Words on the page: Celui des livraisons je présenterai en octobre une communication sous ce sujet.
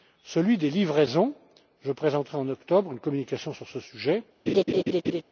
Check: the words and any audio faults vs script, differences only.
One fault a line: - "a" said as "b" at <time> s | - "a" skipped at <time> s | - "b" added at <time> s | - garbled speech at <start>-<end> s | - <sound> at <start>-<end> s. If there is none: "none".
- "sous" said as "sur" at 3.5 s
- laugh at 4.5-5.2 s